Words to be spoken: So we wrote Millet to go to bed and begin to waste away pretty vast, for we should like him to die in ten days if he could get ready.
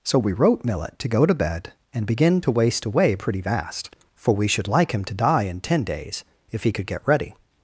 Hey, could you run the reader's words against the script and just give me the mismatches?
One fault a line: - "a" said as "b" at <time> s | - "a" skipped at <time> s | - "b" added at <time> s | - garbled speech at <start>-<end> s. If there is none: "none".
none